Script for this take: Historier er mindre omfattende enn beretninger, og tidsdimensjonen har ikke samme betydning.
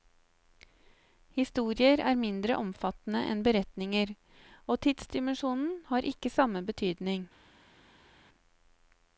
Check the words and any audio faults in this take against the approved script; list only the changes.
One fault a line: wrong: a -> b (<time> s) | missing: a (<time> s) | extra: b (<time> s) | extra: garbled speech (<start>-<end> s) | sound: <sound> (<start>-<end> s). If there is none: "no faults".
no faults